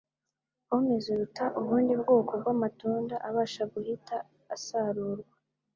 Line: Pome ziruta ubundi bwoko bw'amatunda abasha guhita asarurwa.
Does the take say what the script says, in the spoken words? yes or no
yes